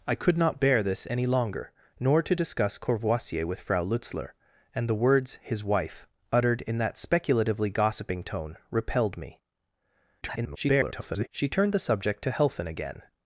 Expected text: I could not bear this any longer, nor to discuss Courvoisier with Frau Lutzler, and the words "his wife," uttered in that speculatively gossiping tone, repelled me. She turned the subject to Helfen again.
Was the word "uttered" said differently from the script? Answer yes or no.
no